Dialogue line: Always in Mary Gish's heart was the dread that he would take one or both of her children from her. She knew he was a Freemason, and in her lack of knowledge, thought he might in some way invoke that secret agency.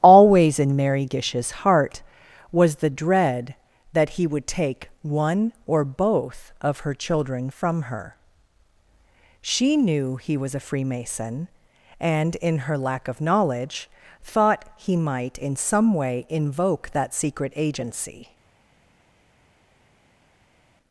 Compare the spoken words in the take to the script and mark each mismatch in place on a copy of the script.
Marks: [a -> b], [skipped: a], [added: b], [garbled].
Always in Mary Gish's heart was the dread that he would take one or both of her children from her. She knew he was a Freemason, and in her lack of knowledge, thought he might in some way invoke that secret agency.